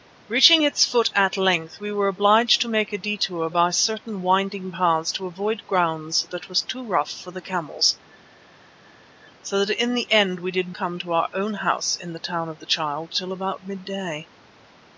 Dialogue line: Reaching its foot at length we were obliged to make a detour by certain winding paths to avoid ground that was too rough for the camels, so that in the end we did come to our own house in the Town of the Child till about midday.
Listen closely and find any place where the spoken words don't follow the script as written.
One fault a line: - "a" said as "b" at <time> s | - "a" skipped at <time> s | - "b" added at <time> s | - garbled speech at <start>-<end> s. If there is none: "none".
none